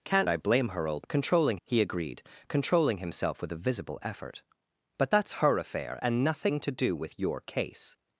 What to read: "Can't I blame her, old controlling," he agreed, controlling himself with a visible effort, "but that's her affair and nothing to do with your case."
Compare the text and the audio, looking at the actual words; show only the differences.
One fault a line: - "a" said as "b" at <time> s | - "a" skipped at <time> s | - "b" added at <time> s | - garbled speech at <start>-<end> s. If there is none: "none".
none